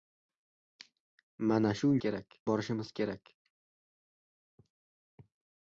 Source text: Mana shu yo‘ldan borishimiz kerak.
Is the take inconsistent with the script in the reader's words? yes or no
yes